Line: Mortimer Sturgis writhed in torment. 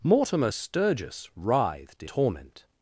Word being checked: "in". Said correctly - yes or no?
no